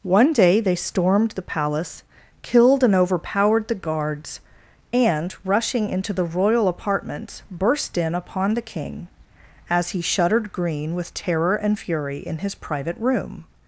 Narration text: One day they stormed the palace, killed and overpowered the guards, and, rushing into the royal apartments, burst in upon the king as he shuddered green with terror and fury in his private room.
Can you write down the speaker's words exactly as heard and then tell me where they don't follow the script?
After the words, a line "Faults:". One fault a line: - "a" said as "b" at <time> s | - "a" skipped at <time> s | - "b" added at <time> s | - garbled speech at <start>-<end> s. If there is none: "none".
One day they stormed the palace, killed and overpowered the guards, and, rushing into the royal apartments, burst in upon the king as he shuddered green with terror and fury in his private room.
Faults:
none